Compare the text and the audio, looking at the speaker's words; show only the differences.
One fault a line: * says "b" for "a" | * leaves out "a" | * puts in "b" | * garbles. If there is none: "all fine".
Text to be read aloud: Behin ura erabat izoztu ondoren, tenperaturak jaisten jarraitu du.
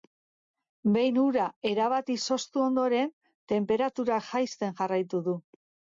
all fine